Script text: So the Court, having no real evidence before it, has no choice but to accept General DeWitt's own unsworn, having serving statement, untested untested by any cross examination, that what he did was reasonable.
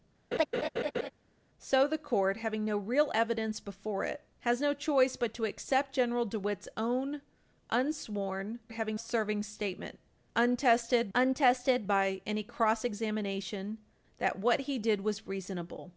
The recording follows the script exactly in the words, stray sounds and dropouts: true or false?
false